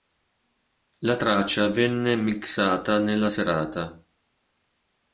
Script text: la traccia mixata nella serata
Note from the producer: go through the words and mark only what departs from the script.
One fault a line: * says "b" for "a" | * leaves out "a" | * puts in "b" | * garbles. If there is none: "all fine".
* puts in "venne"